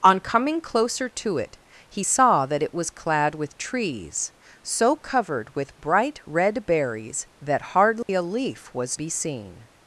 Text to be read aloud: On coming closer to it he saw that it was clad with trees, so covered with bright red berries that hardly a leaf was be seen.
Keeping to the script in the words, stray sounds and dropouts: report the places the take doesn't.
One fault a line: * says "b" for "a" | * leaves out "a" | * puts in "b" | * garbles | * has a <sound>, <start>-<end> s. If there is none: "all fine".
* has a dropout, 8.0-8.1 s